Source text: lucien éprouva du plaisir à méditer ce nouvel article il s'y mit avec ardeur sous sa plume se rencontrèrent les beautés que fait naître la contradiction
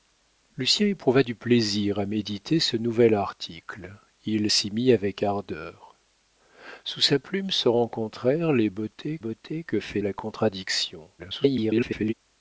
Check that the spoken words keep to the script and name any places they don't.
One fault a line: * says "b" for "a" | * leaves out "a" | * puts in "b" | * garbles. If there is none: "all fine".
* puts in "beautés"
* leaves out "naître"
* garbles